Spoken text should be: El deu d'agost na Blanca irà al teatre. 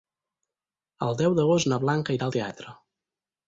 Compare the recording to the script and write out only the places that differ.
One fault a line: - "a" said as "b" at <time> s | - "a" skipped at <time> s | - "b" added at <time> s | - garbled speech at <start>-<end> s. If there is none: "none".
none